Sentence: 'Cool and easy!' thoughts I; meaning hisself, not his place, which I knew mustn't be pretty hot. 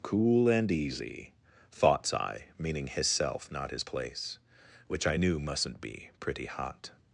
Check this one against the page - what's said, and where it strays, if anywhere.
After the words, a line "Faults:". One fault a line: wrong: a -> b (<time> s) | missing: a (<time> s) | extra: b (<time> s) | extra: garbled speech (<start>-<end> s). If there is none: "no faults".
'Cool and easy!' thoughts I; meaning hisself, not his place, which I knew mustn't be pretty hot.
Faults:
no faults